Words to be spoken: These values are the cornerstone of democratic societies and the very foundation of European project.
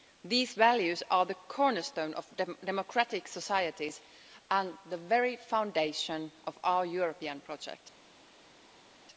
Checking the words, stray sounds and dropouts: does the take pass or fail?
fail